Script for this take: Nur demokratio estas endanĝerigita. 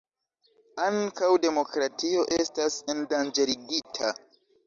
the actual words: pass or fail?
fail